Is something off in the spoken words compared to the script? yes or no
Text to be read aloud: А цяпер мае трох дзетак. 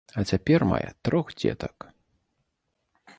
no